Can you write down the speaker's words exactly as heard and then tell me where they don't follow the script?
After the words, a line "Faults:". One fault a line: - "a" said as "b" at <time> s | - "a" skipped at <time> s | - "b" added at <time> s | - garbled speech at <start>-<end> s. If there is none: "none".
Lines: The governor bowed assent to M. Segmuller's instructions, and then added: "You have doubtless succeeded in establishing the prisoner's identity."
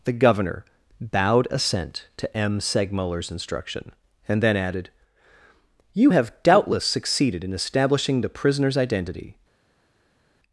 The governor bowed assent to M. Segmuller's instruction, and then added: "You have doubtless succeeded in establishing the prisoner's identity."
Faults:
- "instructions" said as "instruction" at 3.3 s